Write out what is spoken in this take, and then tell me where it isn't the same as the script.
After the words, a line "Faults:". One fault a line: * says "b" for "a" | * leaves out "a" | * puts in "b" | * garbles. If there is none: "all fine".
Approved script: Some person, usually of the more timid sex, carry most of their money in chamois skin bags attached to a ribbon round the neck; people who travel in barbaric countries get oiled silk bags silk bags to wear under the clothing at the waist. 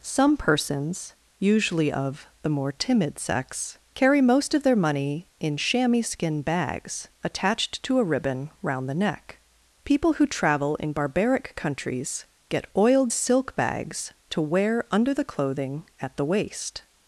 Some persons, usually of the more timid sex, carry most of their money in chamois skin bags attached to a ribbon round the neck; people who travel in barbaric countries get oiled silk bags to wear under the clothing at the waist.
Faults:
* says "persons" for "person"
* leaves out "silk bags"